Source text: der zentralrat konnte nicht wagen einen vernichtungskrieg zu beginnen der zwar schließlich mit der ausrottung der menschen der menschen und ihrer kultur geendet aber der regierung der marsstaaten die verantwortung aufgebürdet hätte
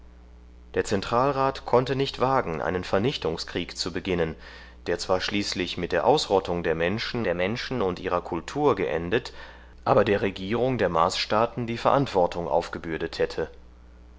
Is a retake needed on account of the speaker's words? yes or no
no